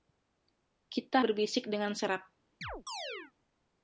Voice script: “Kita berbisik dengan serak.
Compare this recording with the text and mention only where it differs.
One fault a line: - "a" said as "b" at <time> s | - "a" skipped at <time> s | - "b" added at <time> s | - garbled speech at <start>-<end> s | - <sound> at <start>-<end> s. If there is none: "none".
- chirp at 2.6-3.3 s